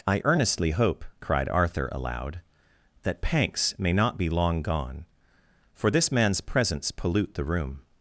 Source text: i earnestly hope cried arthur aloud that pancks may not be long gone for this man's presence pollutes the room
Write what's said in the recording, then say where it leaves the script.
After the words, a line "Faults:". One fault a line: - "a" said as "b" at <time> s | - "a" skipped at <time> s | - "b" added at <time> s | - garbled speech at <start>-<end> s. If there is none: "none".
i earnestly hope cried arthur aloud that pancks may not be long gone for this man's presence pollute the room
Faults:
- "pollutes" said as "pollute" at 6.9 s